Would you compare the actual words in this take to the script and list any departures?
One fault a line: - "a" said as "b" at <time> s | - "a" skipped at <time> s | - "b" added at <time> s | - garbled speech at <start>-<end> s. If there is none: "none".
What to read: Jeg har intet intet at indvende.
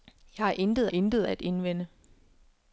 none